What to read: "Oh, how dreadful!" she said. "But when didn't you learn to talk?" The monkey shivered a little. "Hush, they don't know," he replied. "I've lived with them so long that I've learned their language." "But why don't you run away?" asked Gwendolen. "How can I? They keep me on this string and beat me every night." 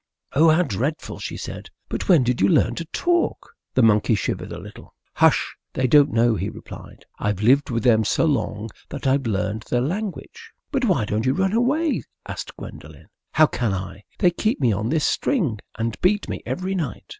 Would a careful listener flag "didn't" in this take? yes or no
yes